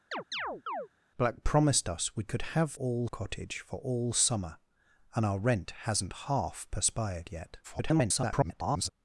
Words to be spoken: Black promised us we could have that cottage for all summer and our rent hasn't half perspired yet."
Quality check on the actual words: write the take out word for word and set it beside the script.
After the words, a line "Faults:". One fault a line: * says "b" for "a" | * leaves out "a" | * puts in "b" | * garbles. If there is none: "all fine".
Black promised us we could have all cottage for all summer and our rent hasn't half perspired yet." [garbled]
Faults:
* says "all" for "that"
* garbles